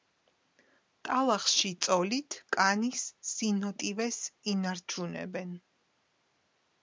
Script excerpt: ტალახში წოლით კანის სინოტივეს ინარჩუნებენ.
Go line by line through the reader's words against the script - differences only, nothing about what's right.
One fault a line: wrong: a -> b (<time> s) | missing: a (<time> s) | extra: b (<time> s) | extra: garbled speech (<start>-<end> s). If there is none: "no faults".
no faults